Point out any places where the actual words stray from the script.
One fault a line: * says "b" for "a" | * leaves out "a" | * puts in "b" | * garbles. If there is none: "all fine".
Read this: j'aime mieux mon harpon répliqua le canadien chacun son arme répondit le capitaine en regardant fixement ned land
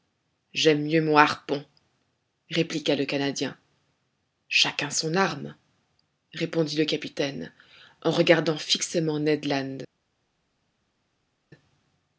all fine